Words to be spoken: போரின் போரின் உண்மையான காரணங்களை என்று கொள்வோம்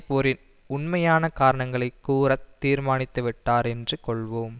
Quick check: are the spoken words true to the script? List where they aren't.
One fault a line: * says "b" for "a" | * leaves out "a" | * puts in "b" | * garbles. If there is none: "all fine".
* leaves out "போரின்"
* puts in "கூற தீர்மானித்துவிட்டார்"